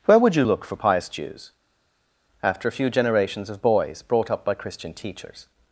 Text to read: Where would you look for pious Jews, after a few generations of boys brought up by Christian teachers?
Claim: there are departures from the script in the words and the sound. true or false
false